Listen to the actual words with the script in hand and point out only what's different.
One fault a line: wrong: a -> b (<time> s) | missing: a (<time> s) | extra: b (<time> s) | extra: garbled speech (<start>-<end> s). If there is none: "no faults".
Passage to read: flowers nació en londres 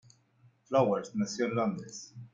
no faults